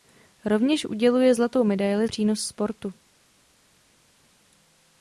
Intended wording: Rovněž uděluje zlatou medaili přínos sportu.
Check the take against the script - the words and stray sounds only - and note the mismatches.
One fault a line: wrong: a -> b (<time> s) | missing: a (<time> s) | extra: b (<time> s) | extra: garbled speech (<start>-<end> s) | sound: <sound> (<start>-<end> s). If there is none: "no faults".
no faults